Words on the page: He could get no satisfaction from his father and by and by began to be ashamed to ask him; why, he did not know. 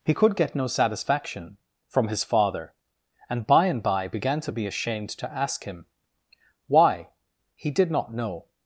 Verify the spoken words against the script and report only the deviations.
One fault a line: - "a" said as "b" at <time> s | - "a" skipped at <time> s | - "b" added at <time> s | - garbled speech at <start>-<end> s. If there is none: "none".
none